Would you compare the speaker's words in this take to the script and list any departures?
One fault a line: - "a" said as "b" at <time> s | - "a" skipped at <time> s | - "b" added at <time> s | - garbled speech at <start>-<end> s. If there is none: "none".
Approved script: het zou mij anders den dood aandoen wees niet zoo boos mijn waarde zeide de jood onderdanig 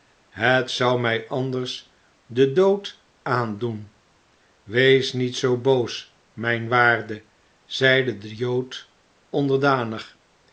none